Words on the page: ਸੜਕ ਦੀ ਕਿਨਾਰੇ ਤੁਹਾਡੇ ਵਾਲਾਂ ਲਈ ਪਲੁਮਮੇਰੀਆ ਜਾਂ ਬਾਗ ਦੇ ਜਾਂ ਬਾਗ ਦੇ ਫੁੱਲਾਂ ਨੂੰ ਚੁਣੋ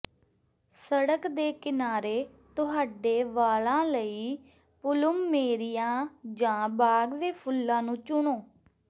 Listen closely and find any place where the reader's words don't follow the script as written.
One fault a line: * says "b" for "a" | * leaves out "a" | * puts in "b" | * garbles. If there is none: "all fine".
* says "ਦੇ" for "ਦੀ"
* leaves out "ਜਾਂ ਬਾਗ ਦੇ"